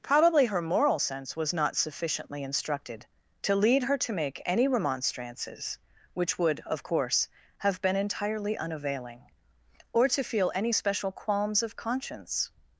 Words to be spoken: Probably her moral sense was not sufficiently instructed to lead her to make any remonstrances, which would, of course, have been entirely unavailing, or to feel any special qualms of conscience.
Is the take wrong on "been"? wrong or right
right